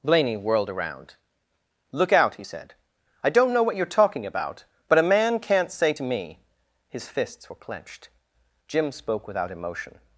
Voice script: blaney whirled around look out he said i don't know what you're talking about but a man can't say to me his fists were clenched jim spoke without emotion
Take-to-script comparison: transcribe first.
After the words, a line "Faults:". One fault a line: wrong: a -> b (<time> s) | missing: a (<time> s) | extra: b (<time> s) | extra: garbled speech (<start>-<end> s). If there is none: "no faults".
blaney whirled around look out he said i don't know what you're talking about but a man can't say to me his fists were clenched jim spoke without emotion
Faults:
no faults